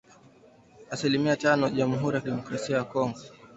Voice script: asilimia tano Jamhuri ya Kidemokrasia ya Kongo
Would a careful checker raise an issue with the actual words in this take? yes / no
no